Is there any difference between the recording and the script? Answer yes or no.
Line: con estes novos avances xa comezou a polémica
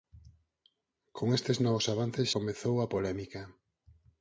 yes